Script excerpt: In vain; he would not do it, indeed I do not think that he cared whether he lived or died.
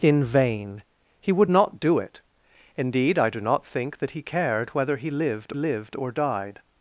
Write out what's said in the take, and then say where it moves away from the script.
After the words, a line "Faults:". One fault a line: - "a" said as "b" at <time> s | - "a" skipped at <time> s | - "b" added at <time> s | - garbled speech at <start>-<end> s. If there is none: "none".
In vain; he would not do it, indeed I do not think that he cared whether he lived lived or died.
Faults:
- "lived" added at 5.5 s